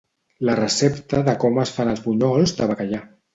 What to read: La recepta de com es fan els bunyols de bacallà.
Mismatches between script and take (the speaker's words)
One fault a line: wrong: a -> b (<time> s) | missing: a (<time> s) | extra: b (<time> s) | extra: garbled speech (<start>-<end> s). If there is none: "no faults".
no faults